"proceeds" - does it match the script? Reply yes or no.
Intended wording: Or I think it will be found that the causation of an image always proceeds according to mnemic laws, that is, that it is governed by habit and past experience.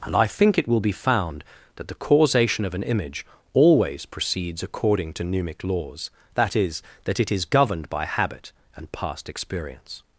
yes